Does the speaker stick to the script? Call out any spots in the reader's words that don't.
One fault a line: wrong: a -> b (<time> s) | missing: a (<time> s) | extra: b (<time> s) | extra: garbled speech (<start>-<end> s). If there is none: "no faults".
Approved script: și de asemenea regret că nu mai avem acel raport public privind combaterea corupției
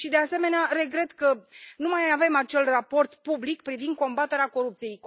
no faults